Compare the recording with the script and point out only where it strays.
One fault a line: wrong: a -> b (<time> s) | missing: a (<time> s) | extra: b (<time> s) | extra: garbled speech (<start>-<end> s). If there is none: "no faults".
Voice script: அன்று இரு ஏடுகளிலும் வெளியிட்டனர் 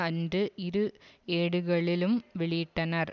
no faults